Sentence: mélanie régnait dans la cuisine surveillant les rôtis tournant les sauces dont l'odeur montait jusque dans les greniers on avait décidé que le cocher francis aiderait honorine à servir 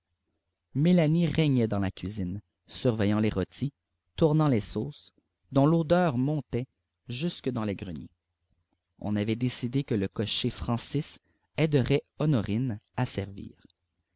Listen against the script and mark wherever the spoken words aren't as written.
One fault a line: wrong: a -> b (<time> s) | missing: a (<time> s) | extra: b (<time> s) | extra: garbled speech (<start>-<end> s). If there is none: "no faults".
no faults